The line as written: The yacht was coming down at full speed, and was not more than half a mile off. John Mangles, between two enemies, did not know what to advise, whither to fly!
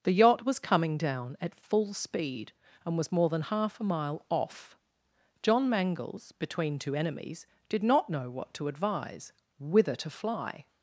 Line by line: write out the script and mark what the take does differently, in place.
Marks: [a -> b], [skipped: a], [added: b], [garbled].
The yacht was coming down at full speed, and was [skipped: not] more than half a mile off. John Mangles, between two enemies, did not know what to advise, whither to fly!